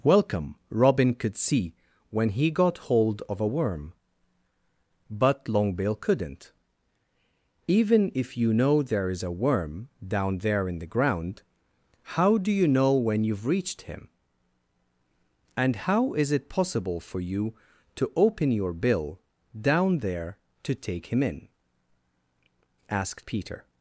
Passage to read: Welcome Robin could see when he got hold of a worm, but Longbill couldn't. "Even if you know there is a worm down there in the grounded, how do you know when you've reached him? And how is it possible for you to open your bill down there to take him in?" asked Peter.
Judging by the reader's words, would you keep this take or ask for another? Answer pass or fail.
fail